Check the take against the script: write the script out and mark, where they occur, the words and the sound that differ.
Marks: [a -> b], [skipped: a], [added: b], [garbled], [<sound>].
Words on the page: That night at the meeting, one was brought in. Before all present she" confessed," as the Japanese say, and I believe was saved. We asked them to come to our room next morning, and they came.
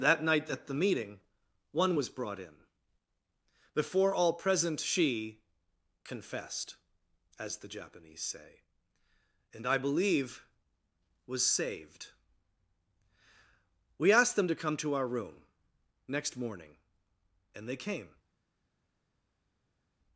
That night at the meeting, one was brought in. Before all present she" confessed," as the Japanese say, and I believe was saved. We asked them to come to our room next morning, and they came.